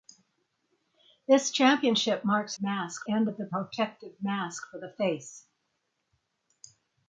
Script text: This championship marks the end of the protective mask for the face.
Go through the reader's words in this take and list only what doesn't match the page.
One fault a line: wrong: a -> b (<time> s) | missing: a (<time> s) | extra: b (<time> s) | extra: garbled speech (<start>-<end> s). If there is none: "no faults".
wrong: the -> mask (2.6 s)